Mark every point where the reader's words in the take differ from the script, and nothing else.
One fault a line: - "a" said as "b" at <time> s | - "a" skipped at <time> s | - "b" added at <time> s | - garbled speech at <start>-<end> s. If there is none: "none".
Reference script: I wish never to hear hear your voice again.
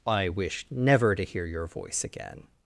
- "hear" skipped at 1.4 s